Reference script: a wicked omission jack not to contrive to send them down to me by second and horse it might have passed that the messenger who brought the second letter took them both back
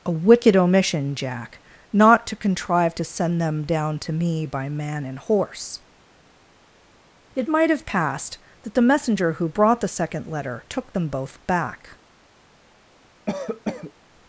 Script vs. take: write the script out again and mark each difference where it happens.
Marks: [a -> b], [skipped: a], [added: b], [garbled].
a wicked omission jack not to contrive to send them down to me by [second -> man] and horse it might have passed that the messenger who brought the second letter took them both back